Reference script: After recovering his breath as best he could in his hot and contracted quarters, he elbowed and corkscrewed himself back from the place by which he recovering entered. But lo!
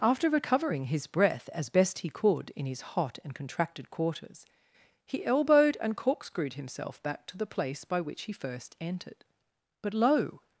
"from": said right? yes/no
no